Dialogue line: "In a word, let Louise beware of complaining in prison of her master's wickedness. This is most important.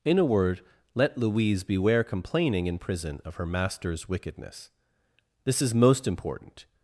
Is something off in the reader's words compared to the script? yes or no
yes